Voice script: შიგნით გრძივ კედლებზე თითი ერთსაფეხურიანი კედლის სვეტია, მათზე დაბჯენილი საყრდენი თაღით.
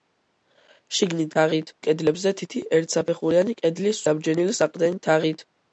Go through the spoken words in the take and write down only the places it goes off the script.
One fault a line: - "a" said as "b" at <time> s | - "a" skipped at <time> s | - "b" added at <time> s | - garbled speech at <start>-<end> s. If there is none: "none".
- "გრძივ" said as "თაღით" at 1.4 s
- "სვეტია მათზე" skipped at 4.0 s